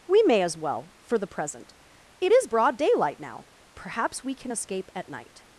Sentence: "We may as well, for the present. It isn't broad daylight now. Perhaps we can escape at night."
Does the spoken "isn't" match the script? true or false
false